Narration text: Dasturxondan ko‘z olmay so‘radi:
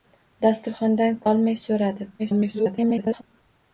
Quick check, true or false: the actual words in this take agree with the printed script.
false